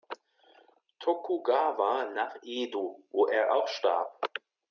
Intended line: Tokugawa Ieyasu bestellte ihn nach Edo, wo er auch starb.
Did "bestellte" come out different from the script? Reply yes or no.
yes